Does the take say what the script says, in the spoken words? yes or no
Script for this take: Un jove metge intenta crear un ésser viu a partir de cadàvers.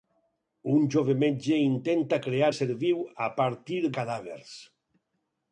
no